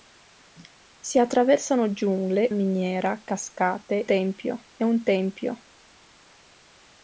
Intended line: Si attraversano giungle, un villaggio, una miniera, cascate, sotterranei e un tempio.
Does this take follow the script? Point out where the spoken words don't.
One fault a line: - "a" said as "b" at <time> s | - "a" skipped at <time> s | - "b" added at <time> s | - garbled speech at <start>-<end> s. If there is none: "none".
- "un villaggio una" skipped at 2.5 s
- "sotterranei" said as "tempio" at 4.0 s